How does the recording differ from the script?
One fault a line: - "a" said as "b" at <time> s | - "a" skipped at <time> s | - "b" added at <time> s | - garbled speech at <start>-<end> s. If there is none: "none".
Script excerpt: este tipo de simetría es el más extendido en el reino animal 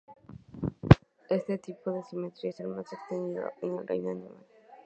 none